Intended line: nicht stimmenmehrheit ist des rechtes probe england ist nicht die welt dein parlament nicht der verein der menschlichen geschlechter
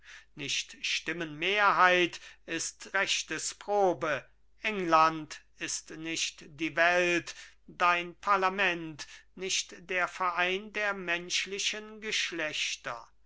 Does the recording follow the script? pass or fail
fail